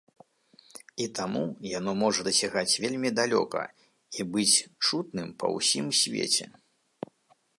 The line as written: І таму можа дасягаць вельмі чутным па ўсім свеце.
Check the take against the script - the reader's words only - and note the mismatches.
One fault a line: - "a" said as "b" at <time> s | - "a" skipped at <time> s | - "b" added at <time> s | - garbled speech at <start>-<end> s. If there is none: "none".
- "яно" added at 1.8 s
- "далёка і быць" added at 3.2 s